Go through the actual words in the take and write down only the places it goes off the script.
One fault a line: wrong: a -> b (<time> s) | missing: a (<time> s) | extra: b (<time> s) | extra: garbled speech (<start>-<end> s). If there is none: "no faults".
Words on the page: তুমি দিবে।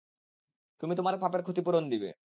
extra: তোমার পাপের ক্ষতিপূরণ (0.9 s)